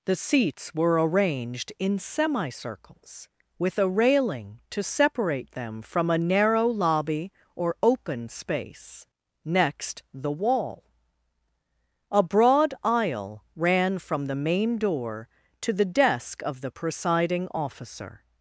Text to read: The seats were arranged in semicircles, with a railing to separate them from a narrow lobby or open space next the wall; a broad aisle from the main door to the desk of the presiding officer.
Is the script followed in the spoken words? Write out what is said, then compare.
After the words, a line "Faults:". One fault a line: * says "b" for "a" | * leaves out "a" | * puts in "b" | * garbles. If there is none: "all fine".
The seats were arranged in semicircles, with a railing to separate them from a narrow lobby or open space next the wall; a broad aisle ran from the main door to the desk of the presiding officer.
Faults:
* puts in "ran"